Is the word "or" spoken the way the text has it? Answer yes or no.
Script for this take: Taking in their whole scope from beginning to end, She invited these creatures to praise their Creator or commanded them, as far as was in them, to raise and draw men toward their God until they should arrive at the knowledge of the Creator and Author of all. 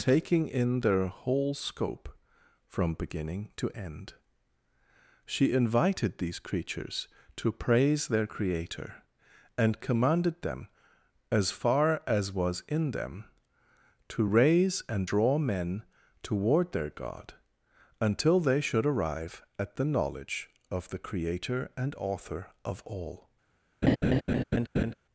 no